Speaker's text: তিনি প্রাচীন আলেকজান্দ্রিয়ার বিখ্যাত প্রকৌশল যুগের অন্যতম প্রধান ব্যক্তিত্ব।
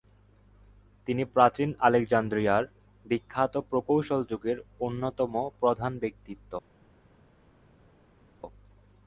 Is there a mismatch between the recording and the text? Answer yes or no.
no